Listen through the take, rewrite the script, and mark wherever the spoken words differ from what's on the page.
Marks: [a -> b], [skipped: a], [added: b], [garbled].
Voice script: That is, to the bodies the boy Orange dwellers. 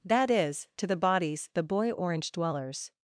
That is, to the bodies the boy Orange dwellers.